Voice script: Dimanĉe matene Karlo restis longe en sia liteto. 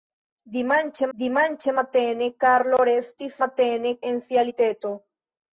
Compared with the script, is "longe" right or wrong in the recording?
wrong